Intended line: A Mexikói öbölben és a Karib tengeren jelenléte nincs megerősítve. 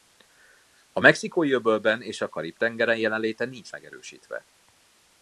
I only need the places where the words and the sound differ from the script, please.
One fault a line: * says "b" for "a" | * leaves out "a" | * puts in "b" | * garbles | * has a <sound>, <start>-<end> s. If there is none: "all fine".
all fine